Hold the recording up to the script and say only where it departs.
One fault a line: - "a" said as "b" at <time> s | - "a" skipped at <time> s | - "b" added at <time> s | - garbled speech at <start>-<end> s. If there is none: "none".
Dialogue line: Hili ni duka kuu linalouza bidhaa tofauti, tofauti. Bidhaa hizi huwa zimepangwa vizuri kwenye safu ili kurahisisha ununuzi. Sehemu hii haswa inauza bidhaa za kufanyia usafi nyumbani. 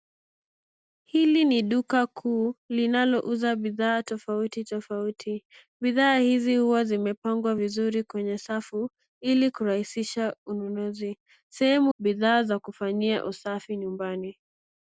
- "hii haswa inauza" skipped at 11.9 s